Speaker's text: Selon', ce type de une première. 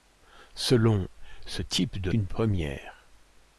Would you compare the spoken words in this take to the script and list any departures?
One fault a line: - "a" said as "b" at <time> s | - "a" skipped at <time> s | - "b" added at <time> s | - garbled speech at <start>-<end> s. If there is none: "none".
none